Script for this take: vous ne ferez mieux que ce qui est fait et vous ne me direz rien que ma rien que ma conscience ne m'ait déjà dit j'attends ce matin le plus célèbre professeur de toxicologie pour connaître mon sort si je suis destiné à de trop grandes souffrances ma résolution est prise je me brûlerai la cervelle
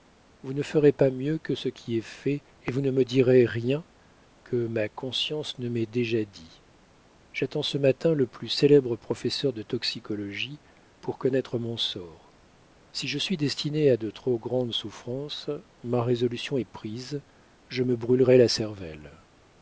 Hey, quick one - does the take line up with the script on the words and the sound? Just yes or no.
no